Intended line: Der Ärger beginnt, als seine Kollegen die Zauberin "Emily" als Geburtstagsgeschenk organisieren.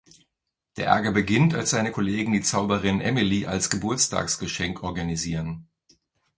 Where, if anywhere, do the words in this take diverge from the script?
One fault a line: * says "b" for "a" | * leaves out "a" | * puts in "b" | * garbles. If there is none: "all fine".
all fine